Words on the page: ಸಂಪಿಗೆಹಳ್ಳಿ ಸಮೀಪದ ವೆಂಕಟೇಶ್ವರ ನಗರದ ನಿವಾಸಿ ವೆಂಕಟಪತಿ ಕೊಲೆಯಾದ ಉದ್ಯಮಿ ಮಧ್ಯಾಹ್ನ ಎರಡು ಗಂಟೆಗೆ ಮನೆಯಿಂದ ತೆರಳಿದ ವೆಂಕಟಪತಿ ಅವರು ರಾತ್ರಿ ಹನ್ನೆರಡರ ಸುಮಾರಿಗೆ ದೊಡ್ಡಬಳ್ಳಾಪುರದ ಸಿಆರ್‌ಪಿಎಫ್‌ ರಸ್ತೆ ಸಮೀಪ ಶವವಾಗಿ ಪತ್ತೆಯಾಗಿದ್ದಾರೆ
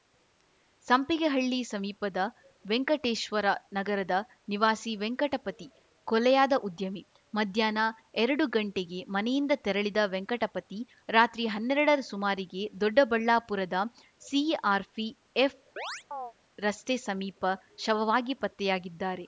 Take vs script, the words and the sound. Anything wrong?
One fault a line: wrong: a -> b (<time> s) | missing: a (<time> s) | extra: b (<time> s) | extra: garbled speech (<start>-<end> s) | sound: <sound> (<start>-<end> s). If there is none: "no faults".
missing: ಅವರು (10.8 s)
sound: chirp (15.8-16.3 s)